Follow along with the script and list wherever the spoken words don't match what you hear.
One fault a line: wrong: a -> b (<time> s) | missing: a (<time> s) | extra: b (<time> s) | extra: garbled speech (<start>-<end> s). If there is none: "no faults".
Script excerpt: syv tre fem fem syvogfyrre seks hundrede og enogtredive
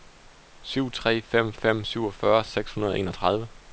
no faults